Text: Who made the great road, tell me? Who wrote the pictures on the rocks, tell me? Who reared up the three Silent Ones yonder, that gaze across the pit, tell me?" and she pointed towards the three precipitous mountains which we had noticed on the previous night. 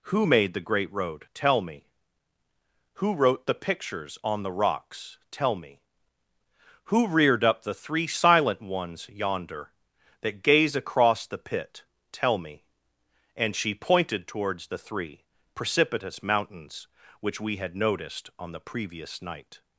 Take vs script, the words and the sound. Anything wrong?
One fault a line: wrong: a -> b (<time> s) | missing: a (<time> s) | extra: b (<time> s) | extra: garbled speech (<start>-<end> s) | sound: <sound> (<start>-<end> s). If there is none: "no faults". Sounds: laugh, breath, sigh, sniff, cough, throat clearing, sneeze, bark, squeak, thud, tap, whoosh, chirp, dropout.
no faults